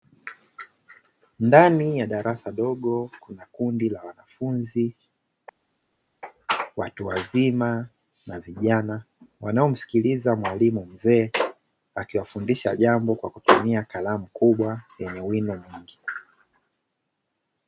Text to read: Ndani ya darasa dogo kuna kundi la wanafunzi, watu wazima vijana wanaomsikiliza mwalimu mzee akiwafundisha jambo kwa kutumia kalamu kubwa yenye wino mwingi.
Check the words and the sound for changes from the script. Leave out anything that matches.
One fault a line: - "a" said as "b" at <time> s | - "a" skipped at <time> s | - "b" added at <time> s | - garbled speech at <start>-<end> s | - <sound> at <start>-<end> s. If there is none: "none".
- "na" added at 8.3 s